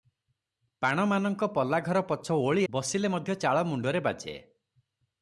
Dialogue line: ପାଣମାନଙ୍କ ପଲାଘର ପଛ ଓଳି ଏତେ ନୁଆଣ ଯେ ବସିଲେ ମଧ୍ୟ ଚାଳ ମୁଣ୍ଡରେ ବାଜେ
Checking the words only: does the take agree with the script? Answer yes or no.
no